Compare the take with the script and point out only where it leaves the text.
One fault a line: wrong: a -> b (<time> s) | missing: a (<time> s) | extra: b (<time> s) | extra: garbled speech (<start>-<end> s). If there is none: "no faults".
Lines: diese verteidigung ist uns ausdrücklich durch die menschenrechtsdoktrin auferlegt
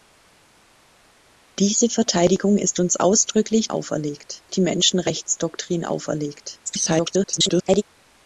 wrong: durch -> auferlegt (3.7 s)
extra: garbled speech (6.7-7.8 s)